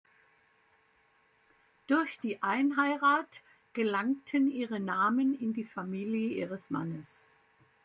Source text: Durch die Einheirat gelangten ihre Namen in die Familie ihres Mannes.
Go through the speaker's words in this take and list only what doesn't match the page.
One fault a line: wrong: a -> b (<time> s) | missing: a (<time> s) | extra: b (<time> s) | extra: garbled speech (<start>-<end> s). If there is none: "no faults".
no faults